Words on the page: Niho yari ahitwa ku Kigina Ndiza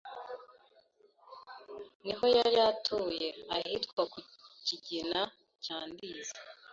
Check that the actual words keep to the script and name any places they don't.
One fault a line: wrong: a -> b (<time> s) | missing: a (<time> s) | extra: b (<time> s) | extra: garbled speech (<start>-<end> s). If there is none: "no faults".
extra: atuye (2.7 s)
extra: cya (5.6 s)